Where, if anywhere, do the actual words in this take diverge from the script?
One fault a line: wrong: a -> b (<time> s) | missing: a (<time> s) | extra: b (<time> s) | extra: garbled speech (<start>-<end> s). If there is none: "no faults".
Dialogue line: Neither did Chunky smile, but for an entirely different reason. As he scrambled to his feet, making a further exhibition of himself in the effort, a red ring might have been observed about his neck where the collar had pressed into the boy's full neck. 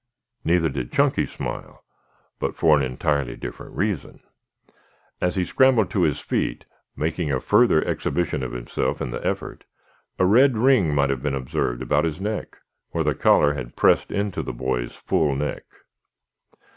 no faults